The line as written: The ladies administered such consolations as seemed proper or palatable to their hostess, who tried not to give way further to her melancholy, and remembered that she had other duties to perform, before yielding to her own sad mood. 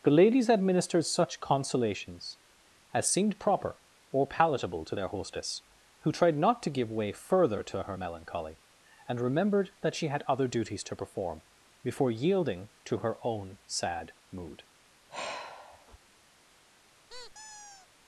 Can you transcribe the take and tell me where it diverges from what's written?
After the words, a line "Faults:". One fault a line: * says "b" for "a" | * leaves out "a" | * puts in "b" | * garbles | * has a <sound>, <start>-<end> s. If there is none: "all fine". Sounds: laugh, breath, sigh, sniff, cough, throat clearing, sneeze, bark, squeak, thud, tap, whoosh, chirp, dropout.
The ladies administered such consolations as seemed proper or palatable to their hostess, who tried not to give way further to her melancholy, and remembered that she had other duties to perform, before yielding to her own sad mood.
Faults:
* has a sigh, 15.1-16.0 s
* has a squeak, 17.1-17.9 s